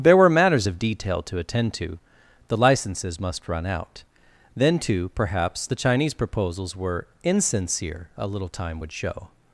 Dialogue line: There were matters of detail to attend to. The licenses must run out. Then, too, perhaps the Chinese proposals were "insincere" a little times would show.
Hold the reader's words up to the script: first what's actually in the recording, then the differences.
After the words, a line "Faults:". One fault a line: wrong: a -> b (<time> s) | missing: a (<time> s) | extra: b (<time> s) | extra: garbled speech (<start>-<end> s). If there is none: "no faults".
There were matters of detail to attend to. The licenses must run out. Then, too, perhaps the Chinese proposals were "insincere" a little time would show.
Faults:
wrong: times -> time (8.5 s)